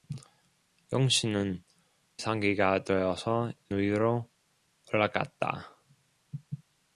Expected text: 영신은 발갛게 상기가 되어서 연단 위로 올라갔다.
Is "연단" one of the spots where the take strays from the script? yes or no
yes